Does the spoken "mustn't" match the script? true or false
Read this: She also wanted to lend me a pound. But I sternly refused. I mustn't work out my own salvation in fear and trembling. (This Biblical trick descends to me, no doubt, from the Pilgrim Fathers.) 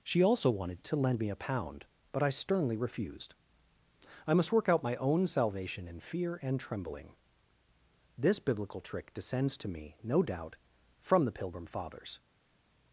false